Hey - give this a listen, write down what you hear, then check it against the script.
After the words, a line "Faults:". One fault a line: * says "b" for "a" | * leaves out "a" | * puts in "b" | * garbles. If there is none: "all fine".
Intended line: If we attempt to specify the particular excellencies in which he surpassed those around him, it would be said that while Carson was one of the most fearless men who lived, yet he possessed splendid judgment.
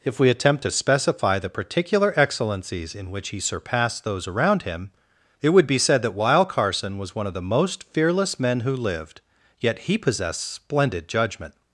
If we attempt to specify the particular excellencies in which he surpassed those around him, it would be said that while Carson was one of the most fearless men who lived, yet he possessed splendid judgment.
Faults:
all fine